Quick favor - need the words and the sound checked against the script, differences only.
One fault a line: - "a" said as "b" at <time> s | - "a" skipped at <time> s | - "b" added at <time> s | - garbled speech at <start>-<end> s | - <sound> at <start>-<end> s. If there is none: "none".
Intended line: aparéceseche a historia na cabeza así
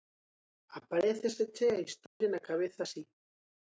- dropout at 2.1-2.2 s